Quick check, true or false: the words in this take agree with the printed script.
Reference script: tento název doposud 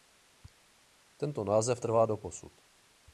false